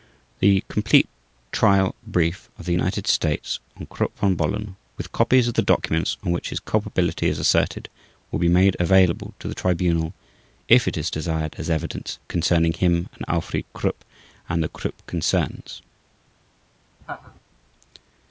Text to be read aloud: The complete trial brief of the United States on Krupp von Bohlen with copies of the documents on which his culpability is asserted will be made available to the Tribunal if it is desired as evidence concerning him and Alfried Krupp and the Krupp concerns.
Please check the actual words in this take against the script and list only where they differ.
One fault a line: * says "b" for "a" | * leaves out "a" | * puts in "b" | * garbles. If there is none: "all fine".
all fine